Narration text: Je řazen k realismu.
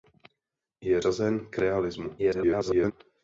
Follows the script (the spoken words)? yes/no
no